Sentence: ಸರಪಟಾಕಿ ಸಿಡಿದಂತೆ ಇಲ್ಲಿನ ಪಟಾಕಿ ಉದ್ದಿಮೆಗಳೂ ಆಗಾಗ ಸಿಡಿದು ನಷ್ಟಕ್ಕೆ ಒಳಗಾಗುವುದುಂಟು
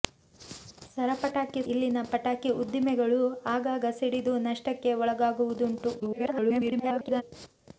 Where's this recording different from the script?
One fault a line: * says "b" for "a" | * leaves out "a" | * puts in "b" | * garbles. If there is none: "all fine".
* leaves out "ಸಿಡಿದಂತೆ"
* garbles